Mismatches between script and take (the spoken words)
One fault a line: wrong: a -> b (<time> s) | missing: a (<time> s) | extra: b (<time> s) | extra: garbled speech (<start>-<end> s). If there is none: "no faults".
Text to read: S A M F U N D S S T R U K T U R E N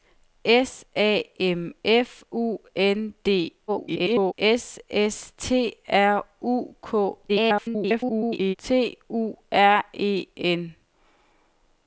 extra: garbled speech (3.7-4.3 s)
extra: garbled speech (7.3-8.6 s)